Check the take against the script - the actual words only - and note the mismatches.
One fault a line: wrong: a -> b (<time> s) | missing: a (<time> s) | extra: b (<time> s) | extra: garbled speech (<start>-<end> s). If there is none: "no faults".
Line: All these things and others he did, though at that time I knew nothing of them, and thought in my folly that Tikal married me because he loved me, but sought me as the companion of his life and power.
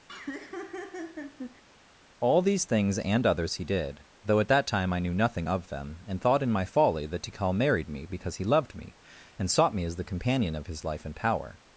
wrong: but -> and (9.4 s)